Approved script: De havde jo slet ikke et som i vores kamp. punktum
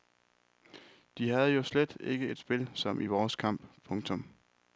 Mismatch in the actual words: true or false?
true